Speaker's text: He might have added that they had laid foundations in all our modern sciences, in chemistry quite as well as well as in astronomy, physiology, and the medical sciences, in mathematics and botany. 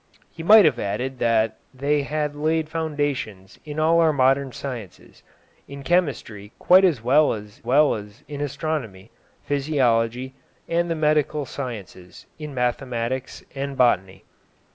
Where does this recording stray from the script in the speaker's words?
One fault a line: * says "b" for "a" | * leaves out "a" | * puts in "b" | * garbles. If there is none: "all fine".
all fine